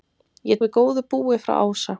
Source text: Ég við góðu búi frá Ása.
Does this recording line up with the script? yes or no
yes